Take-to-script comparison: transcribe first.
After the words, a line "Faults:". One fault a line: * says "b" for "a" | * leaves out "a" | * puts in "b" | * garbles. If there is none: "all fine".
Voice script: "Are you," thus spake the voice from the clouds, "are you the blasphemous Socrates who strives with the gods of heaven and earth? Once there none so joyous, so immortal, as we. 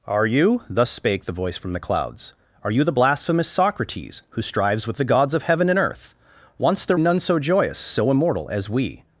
"Are you," thus spake the voice from the clouds, "are you the blasphemous Socrates who strives with the gods of heaven and earth? Once there none so joyous, so immortal, as we.
Faults:
all fine